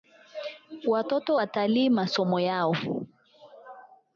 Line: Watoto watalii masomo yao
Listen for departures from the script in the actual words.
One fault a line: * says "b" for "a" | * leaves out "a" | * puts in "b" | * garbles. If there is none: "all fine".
all fine